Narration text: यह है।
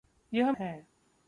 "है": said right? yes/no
yes